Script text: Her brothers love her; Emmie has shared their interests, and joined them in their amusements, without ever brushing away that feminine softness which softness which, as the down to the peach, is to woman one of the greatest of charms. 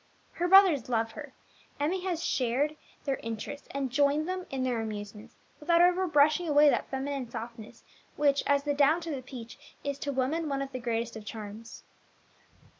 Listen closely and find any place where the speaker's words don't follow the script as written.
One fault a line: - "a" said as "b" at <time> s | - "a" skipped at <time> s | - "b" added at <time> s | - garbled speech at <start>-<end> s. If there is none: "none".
- "softness which" skipped at 8.4 s